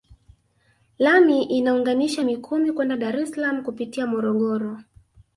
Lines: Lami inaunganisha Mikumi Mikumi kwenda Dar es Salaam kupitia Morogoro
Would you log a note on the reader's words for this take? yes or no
yes